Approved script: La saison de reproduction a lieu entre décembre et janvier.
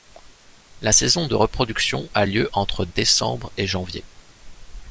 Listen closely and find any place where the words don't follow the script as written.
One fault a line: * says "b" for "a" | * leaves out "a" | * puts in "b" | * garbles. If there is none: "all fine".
all fine